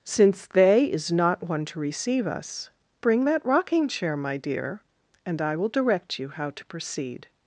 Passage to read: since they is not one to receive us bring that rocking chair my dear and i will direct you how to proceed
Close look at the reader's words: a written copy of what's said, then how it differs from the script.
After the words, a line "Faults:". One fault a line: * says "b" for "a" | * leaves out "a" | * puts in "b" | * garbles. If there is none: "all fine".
since they is not one to receive us bring that rocking chair my dear and i will direct you how to proceed
Faults:
all fine